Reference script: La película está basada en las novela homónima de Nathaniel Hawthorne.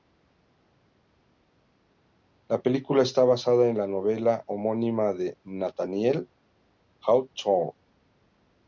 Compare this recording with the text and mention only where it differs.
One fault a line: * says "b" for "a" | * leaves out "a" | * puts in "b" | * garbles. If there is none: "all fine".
* says "la" for "las"